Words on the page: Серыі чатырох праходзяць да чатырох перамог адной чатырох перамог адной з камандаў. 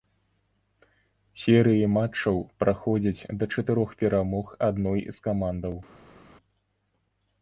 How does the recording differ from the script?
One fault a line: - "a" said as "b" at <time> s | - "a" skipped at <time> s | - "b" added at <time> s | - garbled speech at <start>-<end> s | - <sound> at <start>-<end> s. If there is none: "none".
- "чатырох" said as "матчаў" at 2.0 s
- "чатырох перамог адной" skipped at 5.0 s